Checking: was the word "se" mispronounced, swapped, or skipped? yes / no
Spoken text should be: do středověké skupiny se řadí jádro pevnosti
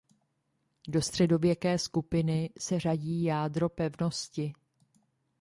no